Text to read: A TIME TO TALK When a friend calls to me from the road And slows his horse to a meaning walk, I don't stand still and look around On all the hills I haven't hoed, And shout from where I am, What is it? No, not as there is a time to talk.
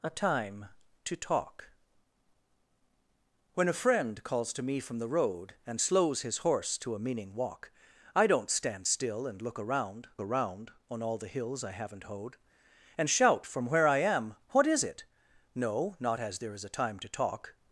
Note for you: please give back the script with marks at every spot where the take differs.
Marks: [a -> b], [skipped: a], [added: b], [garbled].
A TIME TO TALK When a friend calls to me from the road And slows his horse to a meaning walk, I don't stand still and look around [added: around] On all the hills I haven't hoed, And shout from where I am, What is it? No, not as there is a time to talk.